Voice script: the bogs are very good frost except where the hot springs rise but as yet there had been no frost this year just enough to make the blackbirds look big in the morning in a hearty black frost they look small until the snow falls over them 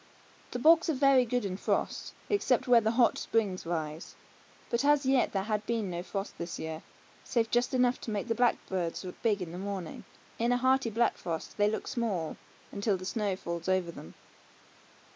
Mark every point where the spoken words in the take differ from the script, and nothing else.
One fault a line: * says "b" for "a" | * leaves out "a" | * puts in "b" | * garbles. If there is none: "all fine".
* puts in "in"
* puts in "save"